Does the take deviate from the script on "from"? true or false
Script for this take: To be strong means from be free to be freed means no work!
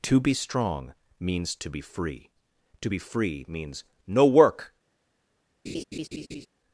true